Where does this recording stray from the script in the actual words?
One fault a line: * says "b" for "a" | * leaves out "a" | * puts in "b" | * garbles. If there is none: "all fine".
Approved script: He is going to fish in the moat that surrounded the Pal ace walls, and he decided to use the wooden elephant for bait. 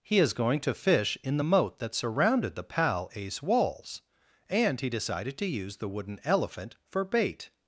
all fine